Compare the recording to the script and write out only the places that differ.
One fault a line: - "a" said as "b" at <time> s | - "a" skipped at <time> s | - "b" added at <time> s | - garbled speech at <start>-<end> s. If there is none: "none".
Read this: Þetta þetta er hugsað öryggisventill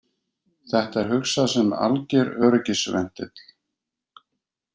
- "þetta" skipped at 1.0 s
- "sem alger" added at 1.5 s